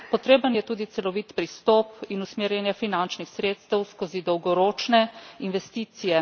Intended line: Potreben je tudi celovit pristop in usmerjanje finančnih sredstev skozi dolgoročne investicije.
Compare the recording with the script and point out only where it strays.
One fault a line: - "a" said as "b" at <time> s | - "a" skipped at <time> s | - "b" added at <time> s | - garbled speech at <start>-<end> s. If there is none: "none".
none